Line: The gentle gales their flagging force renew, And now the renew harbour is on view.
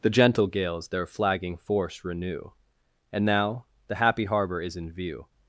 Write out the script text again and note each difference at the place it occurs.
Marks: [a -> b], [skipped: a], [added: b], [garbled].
The gentle gales their flagging force renew, And now the [renew -> happy] harbour is [on -> in] view.